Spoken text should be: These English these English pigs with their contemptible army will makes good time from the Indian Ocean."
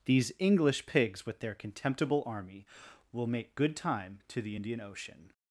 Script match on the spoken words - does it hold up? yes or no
no